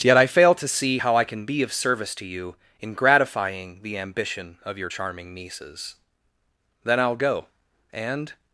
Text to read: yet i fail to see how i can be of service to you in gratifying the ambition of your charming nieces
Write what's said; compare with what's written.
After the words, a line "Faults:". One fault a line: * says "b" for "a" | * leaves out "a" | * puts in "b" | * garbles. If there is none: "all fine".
yet i fail to see how i can be of service to you in gratifying the ambition of your charming nieces then i'll go and
Faults:
* puts in "then i'll go and"